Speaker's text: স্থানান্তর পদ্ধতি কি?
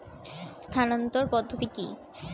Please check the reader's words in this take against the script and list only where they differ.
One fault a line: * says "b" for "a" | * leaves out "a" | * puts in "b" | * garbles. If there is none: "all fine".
all fine